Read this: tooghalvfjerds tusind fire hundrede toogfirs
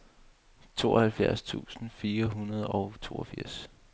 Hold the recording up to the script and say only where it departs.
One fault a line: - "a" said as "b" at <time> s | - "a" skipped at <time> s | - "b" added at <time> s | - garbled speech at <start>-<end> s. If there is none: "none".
- "og" added at 2.6 s